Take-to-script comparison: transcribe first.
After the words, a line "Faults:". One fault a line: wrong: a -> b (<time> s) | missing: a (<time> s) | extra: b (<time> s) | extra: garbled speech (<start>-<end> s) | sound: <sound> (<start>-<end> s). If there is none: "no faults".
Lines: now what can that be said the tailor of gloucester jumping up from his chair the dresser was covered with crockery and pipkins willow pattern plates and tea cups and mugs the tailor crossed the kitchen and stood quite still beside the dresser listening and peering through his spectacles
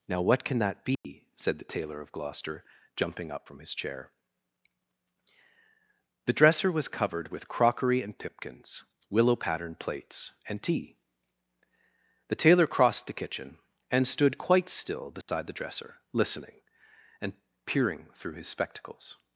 now what can that be said the tailor of gloucester jumping up from his chair the dresser was covered with crockery and pipkins willow pattern plates and tea the tailor crossed the kitchen and stood quite still beside the dresser listening and peering through his spectacles
Faults:
sound: dropout (0.9-1.0 s)
missing: cups and mugs (11.0 s)
sound: dropout (15.2-15.3 s)